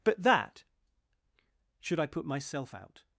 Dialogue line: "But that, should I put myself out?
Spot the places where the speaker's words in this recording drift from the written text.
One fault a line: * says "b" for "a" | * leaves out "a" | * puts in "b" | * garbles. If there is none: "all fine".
all fine